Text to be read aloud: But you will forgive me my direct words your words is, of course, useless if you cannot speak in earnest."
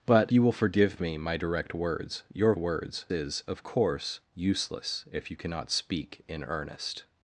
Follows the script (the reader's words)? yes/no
yes